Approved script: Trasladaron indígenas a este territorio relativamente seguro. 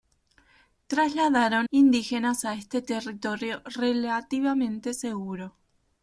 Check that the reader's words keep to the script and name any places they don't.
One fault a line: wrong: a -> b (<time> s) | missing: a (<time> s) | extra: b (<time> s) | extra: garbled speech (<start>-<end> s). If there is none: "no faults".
no faults